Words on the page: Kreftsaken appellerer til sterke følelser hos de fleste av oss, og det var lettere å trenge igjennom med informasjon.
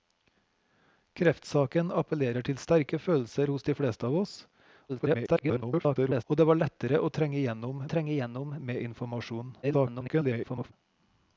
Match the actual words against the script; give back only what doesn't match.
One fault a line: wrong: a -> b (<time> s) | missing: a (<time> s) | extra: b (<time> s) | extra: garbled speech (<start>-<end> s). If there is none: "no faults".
extra: garbled speech (4.9-6.2 s)
extra: trenge igjennom (7.9 s)
extra: garbled speech (9.6-10.7 s)